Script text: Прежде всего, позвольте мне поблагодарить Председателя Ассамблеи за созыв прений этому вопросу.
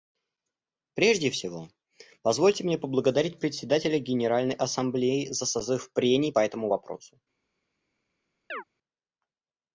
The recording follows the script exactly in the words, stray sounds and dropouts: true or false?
false